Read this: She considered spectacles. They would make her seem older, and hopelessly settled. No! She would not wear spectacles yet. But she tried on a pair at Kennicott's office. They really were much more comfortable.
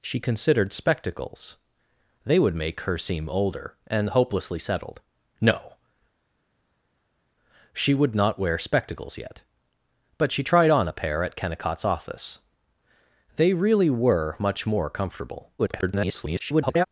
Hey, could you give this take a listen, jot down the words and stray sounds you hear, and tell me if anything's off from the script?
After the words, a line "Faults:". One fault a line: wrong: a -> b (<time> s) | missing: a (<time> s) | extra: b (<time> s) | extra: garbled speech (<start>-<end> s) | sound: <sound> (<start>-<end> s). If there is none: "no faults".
She considered spectacles. They would make her seem older, and hopelessly settled. No! She would not wear spectacles yet. But she tried on a pair at Kennicott's office. They really were much more comfortable. [garbled]
Faults:
extra: garbled speech (15.6-16.9 s)